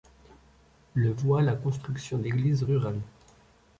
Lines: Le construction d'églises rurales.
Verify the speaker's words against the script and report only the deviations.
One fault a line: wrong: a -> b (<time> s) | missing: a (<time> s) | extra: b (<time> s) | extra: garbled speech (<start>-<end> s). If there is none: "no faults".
extra: voit la (1.1 s)